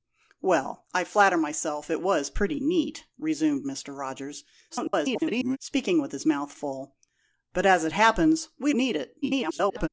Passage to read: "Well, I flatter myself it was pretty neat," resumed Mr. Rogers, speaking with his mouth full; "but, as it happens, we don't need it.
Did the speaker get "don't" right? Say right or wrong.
wrong